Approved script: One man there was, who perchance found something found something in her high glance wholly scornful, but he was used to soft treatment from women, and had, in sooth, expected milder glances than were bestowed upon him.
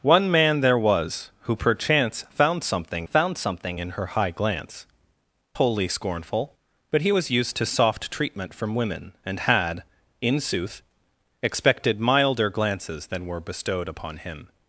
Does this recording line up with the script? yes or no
yes